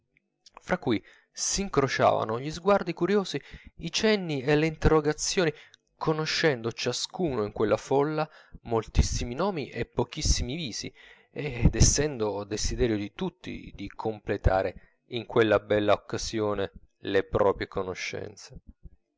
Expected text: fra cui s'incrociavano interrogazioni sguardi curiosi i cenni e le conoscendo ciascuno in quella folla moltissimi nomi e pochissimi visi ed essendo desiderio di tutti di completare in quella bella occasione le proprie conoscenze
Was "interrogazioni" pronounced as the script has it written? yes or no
no